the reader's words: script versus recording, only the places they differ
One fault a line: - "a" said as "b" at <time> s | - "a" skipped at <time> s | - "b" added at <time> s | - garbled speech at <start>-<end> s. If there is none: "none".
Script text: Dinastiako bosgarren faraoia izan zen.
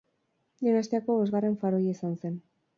none